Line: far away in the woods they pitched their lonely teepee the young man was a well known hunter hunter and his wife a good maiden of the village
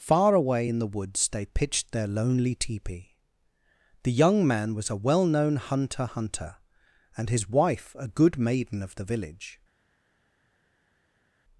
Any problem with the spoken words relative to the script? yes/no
no